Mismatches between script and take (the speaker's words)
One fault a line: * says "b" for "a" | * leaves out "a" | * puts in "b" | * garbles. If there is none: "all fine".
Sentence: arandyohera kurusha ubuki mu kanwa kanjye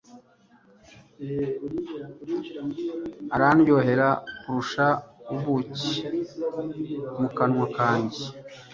all fine